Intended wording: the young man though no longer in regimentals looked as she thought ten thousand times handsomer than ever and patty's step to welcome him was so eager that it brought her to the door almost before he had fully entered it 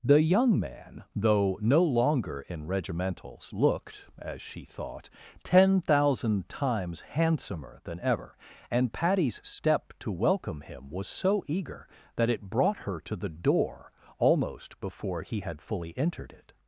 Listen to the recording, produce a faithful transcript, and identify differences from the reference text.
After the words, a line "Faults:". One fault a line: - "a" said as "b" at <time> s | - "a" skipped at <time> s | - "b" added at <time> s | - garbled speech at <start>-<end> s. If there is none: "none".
the young man though no longer in regimentals looked as she thought ten thousand times handsomer than ever and patty's step to welcome him was so eager that it brought her to the door almost before he had fully entered it
Faults:
none